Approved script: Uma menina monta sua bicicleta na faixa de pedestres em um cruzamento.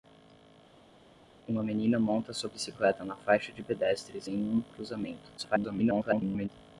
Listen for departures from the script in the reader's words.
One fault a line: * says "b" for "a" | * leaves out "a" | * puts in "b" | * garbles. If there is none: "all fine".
* garbles